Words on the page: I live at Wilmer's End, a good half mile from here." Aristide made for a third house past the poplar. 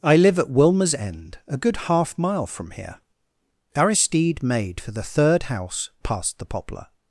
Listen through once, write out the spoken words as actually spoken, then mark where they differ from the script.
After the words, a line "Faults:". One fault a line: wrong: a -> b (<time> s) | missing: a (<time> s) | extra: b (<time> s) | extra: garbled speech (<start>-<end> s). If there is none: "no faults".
I live at Wilmer's End, a good half mile from here." Aristide made for the third house past the poplar.
Faults:
wrong: a -> the (4.9 s)